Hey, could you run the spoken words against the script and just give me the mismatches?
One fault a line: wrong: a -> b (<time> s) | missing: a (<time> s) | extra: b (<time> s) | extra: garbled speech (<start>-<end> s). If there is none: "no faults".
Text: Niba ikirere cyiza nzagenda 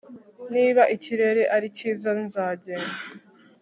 extra: ari (1.6 s)